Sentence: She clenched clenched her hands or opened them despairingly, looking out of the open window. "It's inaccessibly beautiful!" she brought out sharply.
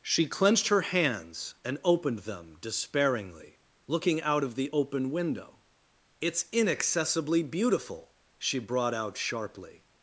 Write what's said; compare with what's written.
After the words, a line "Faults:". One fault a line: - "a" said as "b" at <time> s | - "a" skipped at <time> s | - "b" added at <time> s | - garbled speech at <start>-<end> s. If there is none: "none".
She clenched her hands and opened them despairingly, looking out of the open window. "It's inaccessibly beautiful!" she brought out sharply.
Faults:
- "clenched" skipped at 0.7 s
- "or" said as "and" at 1.6 s